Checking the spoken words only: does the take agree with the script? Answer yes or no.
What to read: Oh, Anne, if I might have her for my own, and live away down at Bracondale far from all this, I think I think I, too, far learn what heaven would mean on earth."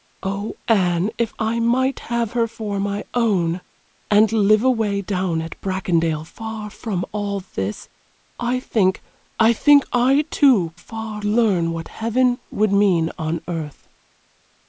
yes